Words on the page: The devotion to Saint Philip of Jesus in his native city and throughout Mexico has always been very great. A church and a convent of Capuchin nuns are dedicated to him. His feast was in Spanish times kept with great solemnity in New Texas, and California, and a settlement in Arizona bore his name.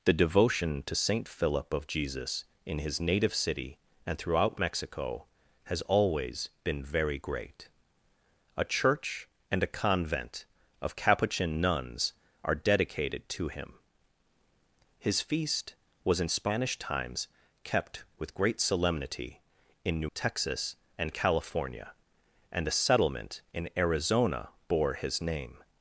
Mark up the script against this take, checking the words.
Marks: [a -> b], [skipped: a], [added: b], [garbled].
The devotion to Saint Philip of Jesus in his native city and throughout Mexico has always been very great. A church and a convent of Capuchin nuns are dedicated to him. His feast was in Spanish times kept with great solemnity in New Texas, and California, and a settlement in Arizona bore his name.